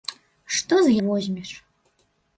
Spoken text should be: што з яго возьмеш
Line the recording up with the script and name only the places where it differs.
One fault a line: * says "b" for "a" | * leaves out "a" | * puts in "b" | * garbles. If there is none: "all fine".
* leaves out "яго"